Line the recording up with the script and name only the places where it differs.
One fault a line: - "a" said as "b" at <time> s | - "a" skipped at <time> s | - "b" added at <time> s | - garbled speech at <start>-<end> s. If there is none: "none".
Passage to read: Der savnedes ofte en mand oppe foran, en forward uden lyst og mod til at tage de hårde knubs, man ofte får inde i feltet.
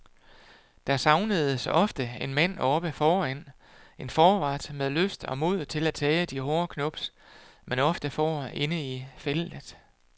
- "uden" said as "med" at 4.7 s